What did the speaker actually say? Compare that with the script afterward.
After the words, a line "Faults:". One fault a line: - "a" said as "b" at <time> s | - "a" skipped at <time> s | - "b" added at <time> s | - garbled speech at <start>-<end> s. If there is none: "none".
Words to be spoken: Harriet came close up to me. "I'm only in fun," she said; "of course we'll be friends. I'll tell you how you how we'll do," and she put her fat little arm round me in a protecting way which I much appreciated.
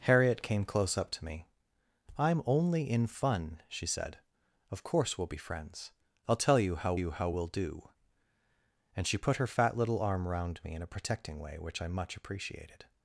Harriet came close up to me. "I'm only in fun," she said; "of course we'll be friends. I'll tell you how you how we'll do," and she put her fat little arm round me in a protecting way which I much appreciated.
Faults:
none